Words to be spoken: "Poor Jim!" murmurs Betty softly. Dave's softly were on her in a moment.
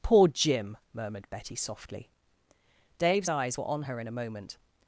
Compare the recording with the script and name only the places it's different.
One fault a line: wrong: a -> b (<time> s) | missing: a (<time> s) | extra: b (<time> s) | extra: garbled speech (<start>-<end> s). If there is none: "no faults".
wrong: murmurs -> murmured (0.9 s)
wrong: softly -> eyes (3.3 s)